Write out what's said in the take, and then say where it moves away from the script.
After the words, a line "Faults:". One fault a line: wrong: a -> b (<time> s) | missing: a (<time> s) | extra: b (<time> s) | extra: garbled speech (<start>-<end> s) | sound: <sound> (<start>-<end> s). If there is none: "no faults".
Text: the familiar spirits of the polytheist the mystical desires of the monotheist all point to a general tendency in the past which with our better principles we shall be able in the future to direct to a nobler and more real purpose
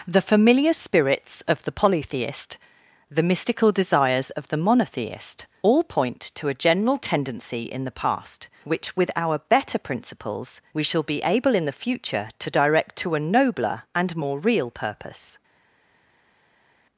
the familiar spirits of the polytheist the mystical desires of the monotheist all point to a general tendency in the past which with our better principles we shall be able in the future to direct to a nobler and more real purpose
Faults:
no faults